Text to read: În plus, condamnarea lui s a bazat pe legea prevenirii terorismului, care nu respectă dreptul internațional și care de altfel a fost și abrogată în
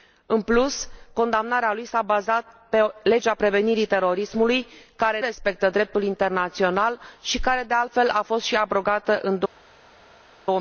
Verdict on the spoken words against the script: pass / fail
fail